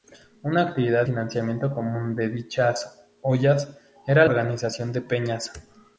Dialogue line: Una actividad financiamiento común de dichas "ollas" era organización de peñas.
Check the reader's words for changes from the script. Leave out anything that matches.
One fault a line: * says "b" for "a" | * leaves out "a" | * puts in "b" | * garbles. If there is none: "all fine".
all fine